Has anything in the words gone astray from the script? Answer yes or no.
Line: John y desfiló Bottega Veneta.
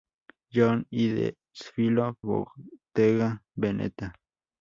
no